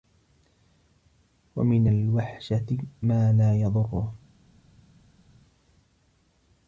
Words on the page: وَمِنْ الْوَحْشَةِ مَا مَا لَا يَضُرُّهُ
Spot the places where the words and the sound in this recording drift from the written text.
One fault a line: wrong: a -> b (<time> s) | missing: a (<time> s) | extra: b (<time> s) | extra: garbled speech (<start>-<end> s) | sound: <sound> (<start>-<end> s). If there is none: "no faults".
missing: مَا (3.3 s)